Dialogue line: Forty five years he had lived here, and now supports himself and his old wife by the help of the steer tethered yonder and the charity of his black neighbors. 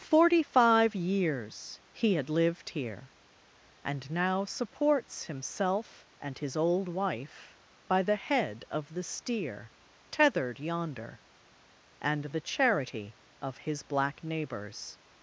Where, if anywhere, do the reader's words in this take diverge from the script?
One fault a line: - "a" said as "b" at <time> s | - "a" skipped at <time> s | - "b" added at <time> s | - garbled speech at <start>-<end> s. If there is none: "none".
- "help" said as "head" at 8.1 s